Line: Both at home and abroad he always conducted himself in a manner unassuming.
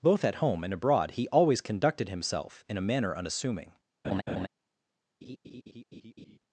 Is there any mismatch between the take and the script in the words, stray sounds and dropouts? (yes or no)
yes